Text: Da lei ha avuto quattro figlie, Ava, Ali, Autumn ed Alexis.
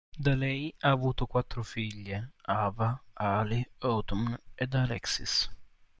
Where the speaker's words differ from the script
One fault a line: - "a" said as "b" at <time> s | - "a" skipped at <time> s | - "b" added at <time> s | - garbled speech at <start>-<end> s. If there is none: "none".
none